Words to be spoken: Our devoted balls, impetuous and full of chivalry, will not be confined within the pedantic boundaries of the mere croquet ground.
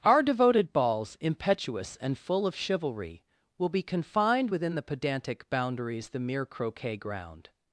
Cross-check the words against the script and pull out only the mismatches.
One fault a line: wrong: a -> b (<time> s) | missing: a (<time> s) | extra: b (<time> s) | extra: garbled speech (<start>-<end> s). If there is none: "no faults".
missing: not (3.7 s)
missing: of (6.1 s)